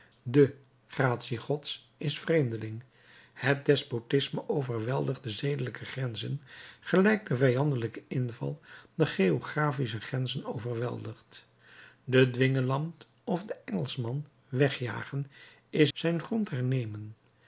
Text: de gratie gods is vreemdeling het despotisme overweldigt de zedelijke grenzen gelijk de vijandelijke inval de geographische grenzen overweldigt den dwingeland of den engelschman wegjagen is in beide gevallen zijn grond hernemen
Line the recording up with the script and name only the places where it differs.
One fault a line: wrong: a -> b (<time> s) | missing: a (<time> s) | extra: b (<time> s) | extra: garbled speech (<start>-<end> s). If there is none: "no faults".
missing: in beide gevallen (15.9 s)